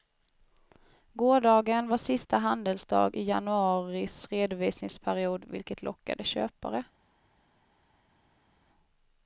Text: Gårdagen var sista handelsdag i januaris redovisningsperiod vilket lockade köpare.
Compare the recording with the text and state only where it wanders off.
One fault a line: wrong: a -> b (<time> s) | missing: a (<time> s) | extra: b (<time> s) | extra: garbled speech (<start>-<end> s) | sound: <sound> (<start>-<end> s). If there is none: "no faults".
no faults